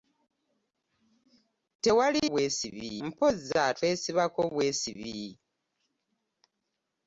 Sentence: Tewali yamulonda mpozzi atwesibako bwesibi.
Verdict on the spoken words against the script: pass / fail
fail